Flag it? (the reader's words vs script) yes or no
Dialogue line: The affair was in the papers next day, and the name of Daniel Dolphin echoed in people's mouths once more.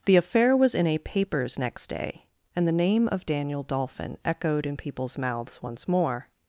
yes